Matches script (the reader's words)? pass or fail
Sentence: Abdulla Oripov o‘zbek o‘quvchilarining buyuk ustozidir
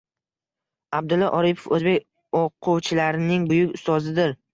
pass